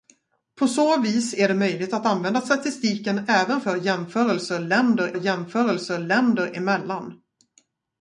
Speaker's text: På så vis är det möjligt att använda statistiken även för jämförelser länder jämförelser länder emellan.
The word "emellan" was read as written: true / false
true